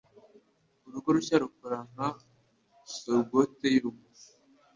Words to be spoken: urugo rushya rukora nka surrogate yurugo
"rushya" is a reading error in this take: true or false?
false